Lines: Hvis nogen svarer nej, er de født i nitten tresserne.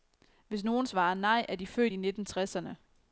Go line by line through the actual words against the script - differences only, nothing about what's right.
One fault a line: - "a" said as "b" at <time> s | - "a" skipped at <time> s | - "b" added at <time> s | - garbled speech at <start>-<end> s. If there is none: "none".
none